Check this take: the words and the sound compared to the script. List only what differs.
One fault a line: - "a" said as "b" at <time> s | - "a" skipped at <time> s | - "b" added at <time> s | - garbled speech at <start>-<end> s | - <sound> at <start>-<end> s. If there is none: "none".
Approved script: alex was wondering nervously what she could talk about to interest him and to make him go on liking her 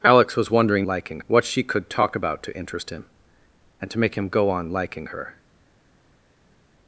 - "nervously" said as "liking" at 0.9 s